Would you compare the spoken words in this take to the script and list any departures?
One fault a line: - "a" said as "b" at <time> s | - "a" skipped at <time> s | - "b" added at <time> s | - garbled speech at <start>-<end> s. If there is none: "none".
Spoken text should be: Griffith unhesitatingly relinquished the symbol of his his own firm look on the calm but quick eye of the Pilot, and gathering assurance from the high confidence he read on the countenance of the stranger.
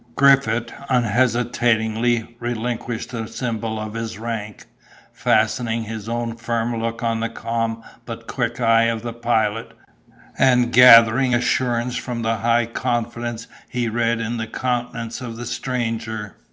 - "rank fastening" added at 4.2 s
- "on" said as "in" at 14.2 s